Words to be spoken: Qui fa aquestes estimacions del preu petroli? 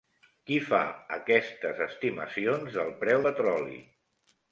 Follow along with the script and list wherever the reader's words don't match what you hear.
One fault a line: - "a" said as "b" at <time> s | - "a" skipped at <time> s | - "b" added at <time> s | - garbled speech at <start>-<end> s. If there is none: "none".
none